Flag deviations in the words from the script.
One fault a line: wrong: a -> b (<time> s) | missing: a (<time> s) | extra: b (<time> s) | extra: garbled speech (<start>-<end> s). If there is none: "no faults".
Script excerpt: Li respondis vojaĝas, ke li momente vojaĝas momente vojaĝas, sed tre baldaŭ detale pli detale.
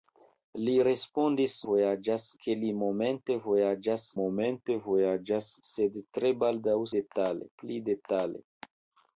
no faults